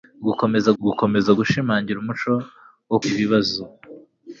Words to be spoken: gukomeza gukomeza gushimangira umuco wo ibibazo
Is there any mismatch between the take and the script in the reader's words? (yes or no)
no